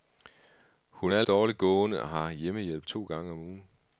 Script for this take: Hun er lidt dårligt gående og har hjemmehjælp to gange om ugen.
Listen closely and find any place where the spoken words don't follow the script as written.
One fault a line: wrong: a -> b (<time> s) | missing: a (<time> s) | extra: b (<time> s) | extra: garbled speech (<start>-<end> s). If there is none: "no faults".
missing: lidt (1.2 s)